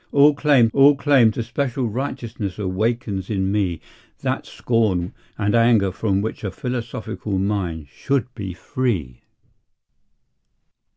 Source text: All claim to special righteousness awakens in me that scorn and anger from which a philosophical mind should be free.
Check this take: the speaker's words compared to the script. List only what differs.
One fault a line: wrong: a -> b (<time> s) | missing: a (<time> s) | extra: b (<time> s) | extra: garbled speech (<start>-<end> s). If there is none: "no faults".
extra: all claim (0.7 s)